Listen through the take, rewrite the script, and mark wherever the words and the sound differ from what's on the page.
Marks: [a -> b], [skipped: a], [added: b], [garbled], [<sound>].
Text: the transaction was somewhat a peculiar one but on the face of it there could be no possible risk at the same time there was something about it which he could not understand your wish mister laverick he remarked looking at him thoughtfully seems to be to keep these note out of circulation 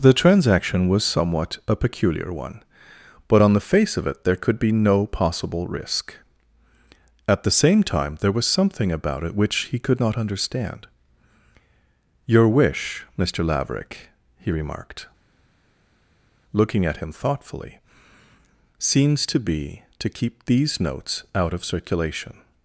the transaction was somewhat a peculiar one but on the face of it there could be no possible risk at the same time there was something about it which he could not understand your wish mister laverick he remarked looking at him thoughtfully seems to be to keep these [note -> notes] out of circulation